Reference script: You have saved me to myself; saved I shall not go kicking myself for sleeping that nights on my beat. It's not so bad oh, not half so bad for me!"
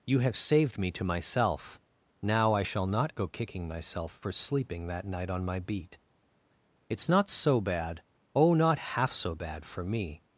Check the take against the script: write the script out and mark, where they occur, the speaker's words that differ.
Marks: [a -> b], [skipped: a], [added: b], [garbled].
You have saved me to myself; [saved -> now] I shall not go kicking myself for sleeping that [nights -> night] on my beat. It's not so bad oh, not half so bad for me!"